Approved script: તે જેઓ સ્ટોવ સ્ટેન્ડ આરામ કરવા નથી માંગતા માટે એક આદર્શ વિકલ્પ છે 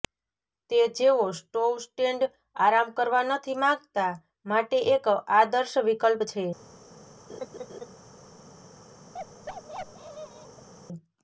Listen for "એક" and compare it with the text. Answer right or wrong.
right